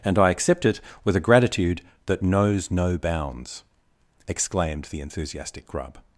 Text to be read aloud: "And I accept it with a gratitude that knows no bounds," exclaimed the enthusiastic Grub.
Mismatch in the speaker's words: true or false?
false